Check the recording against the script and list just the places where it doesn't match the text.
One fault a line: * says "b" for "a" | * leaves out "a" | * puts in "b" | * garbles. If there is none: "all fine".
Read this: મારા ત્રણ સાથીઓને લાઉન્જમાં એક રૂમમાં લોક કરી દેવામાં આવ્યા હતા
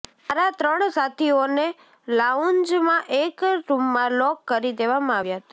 all fine